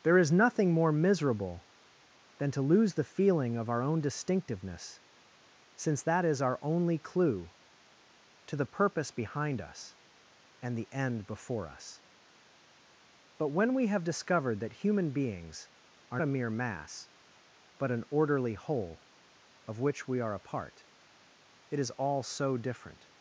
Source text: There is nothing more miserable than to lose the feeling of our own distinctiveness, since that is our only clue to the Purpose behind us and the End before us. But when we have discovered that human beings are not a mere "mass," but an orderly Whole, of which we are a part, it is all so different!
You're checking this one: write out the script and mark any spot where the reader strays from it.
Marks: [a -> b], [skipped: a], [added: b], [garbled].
There is nothing more miserable than to lose the feeling of our own distinctiveness, since that is our only clue to the Purpose behind us and the End before us. But when we have discovered that human beings are [skipped: not] a mere "mass," but an orderly Whole, of which we are a part, it is all so different!